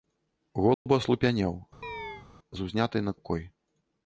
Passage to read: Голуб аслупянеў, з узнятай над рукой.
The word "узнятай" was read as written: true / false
true